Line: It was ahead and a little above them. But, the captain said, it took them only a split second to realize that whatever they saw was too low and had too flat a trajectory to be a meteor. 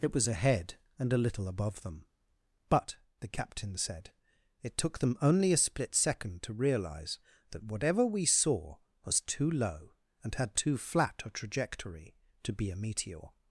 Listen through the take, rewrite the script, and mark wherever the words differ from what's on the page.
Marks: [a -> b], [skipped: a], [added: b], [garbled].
It was ahead and a little above them. But, the captain said, it took them only a split second to realize that whatever [they -> we] saw was too low and had too flat a trajectory to be a meteor.